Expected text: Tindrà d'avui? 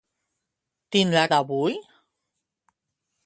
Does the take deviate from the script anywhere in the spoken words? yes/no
no